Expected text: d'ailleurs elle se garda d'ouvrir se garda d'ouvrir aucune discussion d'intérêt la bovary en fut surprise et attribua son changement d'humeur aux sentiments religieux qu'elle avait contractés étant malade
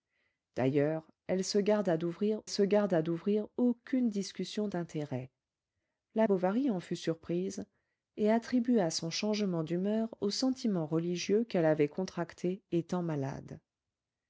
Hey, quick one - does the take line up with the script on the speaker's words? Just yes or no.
yes